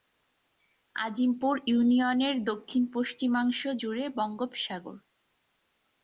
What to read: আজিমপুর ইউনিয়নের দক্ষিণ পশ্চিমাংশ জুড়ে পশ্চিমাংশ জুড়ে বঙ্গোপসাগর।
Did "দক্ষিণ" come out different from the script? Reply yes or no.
no